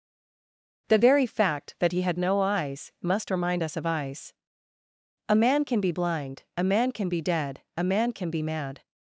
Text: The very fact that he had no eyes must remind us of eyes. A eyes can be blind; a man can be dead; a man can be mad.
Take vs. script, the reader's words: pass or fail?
fail